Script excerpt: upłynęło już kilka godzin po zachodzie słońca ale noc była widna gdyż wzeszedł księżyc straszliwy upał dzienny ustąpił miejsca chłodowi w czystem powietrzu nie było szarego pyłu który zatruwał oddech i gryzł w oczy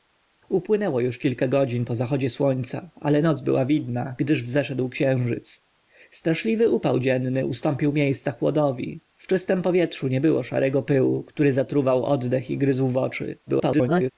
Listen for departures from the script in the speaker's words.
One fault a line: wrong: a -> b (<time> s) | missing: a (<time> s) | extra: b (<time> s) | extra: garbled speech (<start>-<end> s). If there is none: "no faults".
extra: garbled speech (13.5-14.1 s)